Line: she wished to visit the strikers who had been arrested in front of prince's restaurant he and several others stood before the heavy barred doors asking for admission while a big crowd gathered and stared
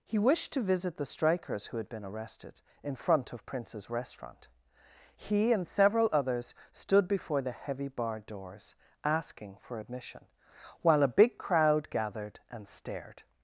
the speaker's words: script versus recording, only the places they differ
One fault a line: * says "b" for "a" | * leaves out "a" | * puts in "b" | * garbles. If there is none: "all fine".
* says "he" for "she"